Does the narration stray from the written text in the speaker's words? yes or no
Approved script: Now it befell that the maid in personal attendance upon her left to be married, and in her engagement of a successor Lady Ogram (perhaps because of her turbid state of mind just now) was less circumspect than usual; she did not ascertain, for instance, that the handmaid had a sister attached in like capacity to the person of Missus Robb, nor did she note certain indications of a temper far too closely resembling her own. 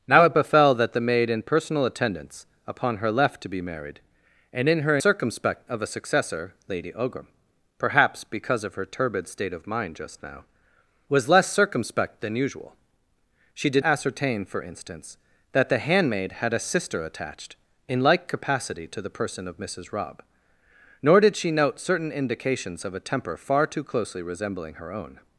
yes